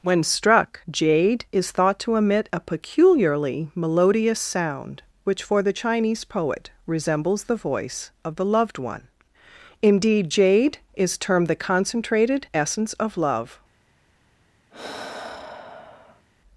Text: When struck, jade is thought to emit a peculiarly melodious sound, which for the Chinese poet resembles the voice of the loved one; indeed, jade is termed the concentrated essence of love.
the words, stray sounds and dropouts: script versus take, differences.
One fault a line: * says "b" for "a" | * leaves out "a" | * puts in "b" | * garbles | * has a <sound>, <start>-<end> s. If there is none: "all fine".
* has a sigh, 14.7-16.3 s